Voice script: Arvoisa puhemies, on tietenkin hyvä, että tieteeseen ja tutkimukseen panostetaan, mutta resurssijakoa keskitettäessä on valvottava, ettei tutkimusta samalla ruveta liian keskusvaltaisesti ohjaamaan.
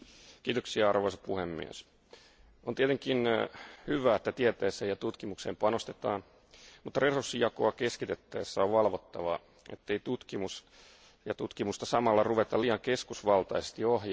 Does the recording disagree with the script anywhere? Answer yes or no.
no